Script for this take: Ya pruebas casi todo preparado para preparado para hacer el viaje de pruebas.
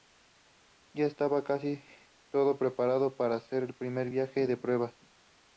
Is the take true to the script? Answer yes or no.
no